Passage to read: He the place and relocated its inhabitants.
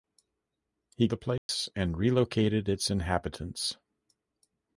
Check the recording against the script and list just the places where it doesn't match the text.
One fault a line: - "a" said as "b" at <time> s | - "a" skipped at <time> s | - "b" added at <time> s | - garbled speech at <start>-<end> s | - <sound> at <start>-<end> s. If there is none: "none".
- dropout at 1.4-1.5 s